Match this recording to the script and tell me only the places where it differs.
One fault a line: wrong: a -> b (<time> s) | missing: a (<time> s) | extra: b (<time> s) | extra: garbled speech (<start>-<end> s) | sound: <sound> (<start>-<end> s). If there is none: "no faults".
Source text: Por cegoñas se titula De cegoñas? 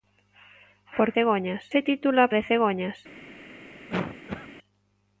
sound: cough (3.9-4.5 s)